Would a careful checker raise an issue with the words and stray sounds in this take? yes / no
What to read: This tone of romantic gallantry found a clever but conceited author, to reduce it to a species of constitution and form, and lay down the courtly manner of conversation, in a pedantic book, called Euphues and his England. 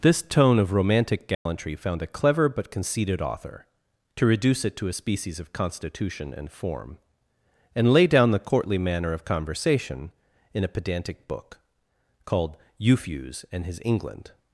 yes